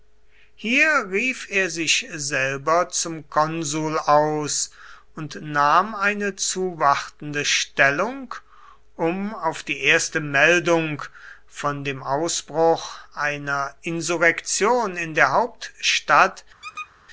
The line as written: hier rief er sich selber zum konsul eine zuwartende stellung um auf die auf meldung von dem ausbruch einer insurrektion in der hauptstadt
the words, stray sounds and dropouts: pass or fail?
fail